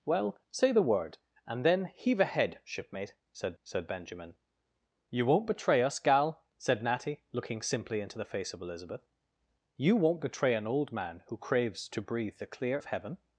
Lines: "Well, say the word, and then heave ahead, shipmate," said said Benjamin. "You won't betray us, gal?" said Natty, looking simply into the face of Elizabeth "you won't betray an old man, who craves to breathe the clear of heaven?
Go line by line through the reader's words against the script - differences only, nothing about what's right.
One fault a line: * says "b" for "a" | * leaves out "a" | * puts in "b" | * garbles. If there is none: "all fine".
all fine